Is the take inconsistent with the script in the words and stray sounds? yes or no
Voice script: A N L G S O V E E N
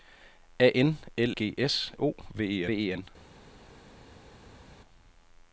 no